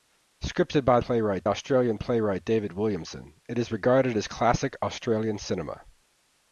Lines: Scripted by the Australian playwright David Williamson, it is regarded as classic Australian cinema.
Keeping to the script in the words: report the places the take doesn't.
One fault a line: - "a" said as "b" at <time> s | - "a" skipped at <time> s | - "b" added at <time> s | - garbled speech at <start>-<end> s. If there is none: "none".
- "the" said as "playwright" at 1.0 s